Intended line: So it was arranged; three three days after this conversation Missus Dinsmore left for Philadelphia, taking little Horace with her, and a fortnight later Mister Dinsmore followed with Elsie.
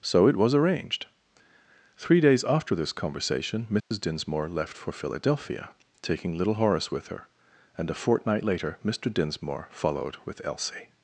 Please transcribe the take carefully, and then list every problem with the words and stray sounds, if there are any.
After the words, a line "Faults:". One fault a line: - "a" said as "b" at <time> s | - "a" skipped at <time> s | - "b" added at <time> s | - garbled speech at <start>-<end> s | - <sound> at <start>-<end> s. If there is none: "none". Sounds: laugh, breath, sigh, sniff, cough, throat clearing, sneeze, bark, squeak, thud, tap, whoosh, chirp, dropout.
So it was arranged; three days after this conversation Missus Dinsmore left for Philadelphia, taking little Horace with her, and a fortnight later Mister Dinsmore followed with Elsie.
Faults:
- "three" skipped at 2.2 s
- dropout at 3.8-3.9 s